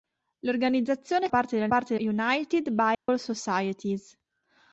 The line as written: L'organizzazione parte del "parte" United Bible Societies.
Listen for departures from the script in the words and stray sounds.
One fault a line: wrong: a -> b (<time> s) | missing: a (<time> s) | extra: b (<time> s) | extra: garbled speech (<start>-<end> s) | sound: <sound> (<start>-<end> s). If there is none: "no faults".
sound: dropout (2.9-3.1 s)